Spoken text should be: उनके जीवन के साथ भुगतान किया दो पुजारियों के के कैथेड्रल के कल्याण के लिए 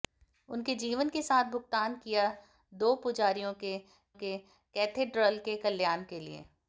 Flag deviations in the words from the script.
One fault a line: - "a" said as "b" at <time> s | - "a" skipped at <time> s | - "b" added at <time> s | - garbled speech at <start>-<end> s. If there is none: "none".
none